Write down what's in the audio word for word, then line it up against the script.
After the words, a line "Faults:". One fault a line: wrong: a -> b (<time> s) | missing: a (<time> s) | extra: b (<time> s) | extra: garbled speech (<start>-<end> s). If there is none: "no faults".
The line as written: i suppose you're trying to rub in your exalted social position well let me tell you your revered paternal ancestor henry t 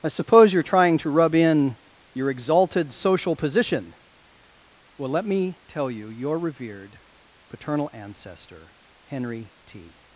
i suppose you're trying to rub in your exalted social position well let me tell you your revered paternal ancestor henry t
Faults:
no faults